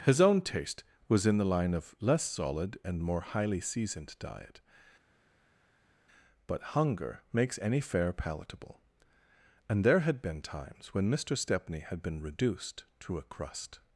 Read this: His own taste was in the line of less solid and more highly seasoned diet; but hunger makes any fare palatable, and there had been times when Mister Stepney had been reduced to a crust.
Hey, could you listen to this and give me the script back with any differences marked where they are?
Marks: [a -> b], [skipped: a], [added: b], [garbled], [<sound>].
His own taste was in the line of less solid and more highly seasoned diet; but hunger makes any fare palatable, and there had been times when Mister Stepney had been reduced to a crust.